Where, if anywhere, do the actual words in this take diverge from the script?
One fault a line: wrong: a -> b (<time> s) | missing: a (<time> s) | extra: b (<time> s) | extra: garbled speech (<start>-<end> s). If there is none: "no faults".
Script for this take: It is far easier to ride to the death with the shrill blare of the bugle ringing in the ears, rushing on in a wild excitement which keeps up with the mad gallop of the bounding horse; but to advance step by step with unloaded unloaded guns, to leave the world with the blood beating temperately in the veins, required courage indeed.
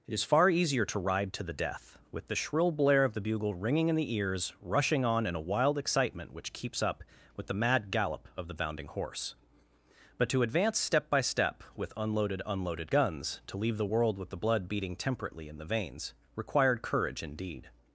no faults